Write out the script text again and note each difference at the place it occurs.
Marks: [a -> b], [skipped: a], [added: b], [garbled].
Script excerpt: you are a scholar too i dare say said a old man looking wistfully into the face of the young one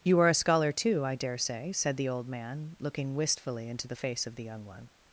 you are a scholar too i dare say said [a -> the] old man looking wistfully into the face of the young one